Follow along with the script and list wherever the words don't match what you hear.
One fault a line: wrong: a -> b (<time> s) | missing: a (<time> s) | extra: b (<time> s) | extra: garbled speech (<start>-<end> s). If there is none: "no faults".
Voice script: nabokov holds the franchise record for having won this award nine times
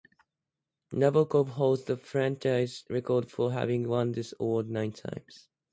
no faults